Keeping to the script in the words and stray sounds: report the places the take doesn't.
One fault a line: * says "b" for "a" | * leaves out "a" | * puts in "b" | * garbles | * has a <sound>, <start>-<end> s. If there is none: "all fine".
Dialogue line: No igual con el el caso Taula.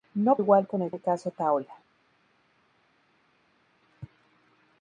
all fine